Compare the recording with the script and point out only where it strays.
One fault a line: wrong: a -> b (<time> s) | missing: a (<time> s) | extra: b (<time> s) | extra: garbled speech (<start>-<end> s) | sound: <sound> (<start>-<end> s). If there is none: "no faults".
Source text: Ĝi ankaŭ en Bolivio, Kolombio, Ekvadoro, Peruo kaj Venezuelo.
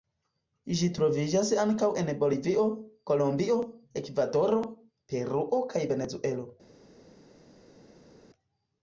extra: troviĝas (1.0 s)